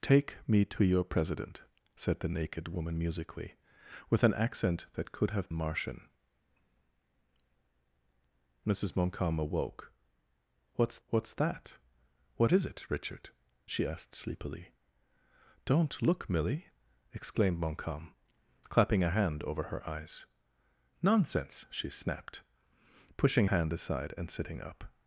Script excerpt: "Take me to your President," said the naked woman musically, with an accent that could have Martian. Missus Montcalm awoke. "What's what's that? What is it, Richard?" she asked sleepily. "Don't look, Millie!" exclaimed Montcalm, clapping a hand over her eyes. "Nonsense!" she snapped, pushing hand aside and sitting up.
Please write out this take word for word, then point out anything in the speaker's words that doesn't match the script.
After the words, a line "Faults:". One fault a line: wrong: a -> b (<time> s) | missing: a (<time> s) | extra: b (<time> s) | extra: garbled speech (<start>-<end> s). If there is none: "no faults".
"Take me to your President," said the naked woman musically, with an accent that could have Martian. Missus Montcalm awoke. "What's what's that? What is it, Richard?" she asked sleepily. "Don't look, Millie!" exclaimed Montcalm, clapping a hand over her eyes. "Nonsense!" she snapped, pushing hand aside and sitting up.
Faults:
no faults